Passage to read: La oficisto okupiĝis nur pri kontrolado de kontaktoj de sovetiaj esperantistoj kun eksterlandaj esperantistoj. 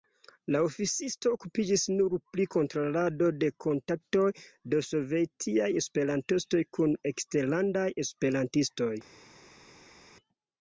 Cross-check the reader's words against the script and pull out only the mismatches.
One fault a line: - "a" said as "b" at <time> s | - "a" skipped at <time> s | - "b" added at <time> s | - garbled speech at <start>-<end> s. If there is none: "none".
none